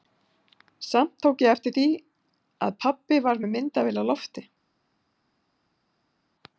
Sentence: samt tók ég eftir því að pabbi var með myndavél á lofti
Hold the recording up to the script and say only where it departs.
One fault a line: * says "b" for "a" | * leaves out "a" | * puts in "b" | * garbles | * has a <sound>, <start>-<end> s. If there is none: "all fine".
all fine